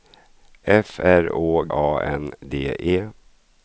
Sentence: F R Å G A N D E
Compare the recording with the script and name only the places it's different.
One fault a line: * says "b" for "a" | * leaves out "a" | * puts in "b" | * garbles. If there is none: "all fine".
* leaves out "G"